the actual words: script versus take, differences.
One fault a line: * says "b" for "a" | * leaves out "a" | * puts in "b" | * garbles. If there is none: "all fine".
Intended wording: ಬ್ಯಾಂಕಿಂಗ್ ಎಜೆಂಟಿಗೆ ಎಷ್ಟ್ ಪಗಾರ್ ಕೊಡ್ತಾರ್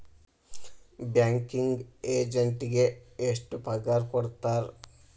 all fine